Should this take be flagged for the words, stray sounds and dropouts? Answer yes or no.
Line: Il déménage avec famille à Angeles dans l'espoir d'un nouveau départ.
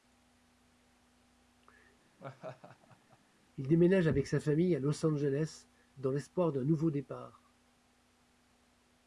yes